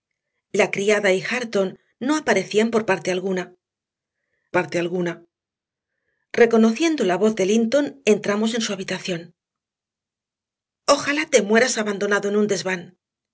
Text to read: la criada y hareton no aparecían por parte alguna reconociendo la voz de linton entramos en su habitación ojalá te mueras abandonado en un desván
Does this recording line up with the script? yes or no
no